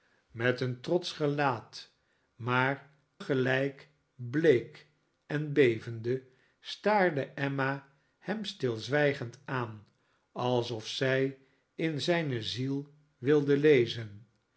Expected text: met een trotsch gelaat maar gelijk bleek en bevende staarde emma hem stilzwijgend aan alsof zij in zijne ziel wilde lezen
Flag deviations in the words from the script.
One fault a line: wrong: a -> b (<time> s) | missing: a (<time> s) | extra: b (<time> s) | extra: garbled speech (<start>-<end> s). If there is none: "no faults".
no faults